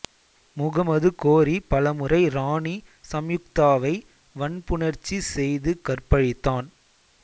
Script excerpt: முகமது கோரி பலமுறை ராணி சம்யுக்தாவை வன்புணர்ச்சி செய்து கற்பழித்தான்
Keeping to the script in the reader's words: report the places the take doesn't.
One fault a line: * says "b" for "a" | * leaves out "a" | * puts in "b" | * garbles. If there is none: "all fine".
all fine